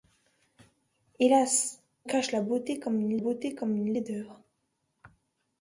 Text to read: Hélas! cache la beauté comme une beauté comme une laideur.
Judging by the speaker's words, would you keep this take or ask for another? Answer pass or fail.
pass